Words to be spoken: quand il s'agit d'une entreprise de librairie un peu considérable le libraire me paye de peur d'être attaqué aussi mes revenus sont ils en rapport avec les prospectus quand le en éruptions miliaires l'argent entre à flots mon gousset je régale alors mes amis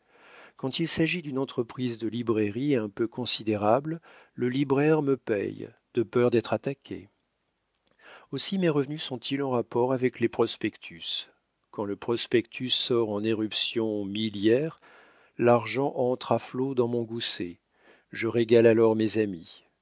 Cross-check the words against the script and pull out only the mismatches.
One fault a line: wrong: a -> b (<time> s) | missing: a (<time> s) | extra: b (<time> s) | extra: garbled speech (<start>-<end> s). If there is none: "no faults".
extra: prospectus sort (12.0 s)
extra: dans (16.7 s)